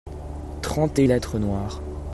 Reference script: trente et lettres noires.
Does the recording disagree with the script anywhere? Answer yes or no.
no